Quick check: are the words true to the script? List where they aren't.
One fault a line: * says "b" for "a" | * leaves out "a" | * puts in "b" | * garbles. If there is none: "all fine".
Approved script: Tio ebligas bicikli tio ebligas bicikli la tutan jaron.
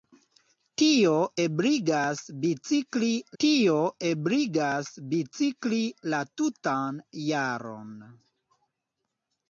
all fine